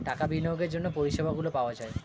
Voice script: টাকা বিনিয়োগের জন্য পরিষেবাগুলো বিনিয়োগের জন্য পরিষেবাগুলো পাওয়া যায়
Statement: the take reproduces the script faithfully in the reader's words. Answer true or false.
false